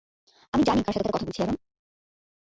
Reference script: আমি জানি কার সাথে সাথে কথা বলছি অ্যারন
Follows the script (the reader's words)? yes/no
yes